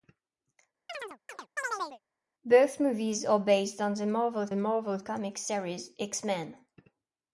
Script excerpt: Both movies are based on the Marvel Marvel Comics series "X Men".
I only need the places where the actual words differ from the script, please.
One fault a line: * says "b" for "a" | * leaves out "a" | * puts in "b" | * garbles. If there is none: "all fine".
all fine